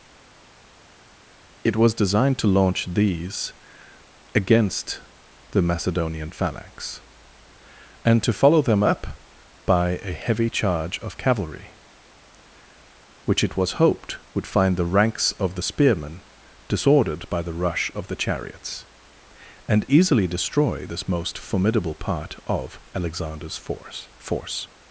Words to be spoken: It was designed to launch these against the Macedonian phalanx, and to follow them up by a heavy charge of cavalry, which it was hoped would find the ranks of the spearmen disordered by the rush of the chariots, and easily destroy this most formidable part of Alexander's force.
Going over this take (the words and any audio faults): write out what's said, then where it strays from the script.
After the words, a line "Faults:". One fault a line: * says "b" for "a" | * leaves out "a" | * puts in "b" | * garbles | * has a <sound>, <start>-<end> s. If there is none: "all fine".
It was designed to launch these against the Macedonian phalanx, and to follow them up by a heavy charge of cavalry, which it was hoped would find the ranks of the spearmen disordered by the rush of the chariots, and easily destroy this most formidable part of Alexander's force force.
Faults:
* puts in "force"